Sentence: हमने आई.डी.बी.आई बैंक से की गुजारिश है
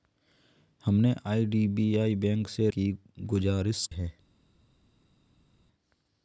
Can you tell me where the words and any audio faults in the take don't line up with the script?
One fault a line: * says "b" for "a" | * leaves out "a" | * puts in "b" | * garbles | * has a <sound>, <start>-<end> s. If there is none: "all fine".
all fine